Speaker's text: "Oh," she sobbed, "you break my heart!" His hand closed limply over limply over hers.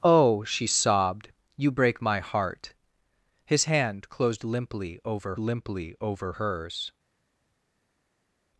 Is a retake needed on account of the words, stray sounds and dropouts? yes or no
no